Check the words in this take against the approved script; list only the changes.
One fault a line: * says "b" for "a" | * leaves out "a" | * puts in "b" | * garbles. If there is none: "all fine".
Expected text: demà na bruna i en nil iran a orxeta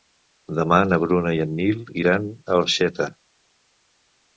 all fine